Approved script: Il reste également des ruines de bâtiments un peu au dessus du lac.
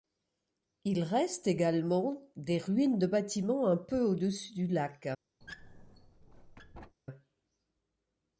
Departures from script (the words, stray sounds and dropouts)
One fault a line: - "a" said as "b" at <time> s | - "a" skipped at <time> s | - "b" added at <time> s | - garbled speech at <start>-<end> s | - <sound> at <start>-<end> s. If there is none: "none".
- squeak at 5.4-7.0 s